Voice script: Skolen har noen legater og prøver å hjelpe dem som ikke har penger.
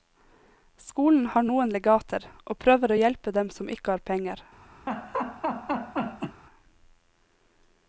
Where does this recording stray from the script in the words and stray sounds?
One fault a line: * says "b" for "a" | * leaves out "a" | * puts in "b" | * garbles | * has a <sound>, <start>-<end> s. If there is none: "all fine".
* has a laugh, 4.9-6.4 s